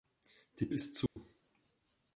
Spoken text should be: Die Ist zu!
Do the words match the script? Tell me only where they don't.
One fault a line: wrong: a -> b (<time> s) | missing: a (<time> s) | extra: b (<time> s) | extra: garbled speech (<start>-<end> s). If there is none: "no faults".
no faults